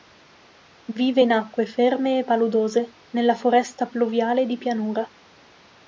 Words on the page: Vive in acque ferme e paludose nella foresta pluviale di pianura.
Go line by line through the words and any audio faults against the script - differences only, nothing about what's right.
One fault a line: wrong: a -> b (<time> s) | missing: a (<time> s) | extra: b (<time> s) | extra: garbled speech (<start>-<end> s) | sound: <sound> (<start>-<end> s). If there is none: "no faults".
no faults